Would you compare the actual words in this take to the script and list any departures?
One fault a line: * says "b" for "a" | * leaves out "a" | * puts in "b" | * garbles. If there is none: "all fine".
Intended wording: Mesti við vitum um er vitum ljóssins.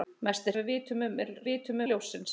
all fine